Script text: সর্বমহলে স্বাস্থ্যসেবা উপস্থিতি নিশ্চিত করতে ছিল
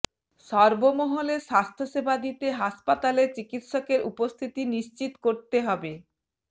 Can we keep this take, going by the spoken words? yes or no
no